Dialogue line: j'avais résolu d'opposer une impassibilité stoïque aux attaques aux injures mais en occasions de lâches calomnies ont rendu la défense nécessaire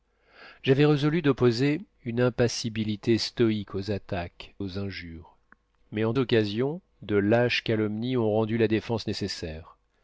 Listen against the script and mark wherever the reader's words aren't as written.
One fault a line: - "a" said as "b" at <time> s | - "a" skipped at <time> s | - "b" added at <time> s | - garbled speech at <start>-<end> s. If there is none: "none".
none